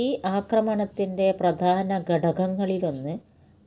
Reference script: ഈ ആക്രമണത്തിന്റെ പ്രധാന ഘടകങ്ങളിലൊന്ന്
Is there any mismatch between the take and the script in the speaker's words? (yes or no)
no